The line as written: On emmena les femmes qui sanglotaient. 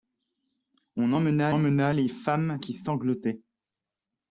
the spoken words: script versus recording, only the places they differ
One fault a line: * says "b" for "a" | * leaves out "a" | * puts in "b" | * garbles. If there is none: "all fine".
* puts in "emmena"